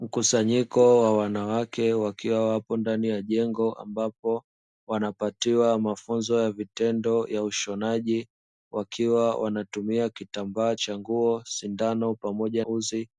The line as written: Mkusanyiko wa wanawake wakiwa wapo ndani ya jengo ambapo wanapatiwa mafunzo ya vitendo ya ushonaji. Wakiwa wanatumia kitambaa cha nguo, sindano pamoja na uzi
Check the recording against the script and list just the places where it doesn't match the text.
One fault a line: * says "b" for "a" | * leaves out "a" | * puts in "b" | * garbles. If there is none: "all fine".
* leaves out "na"